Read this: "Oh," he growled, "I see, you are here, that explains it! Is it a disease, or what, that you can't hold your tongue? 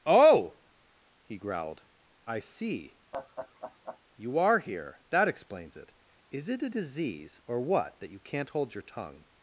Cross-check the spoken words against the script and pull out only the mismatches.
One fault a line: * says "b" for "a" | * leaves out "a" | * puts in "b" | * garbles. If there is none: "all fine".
all fine